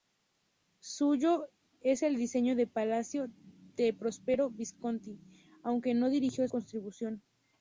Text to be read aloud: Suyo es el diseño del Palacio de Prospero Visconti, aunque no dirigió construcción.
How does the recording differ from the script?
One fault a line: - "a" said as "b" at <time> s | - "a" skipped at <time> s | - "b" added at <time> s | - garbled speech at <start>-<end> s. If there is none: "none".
none